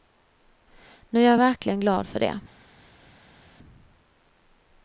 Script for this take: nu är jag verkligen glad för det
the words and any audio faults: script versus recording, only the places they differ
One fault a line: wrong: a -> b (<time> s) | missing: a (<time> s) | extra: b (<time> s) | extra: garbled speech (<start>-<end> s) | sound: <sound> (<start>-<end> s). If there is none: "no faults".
no faults